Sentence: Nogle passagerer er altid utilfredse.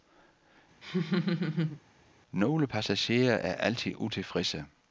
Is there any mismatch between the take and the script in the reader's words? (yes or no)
no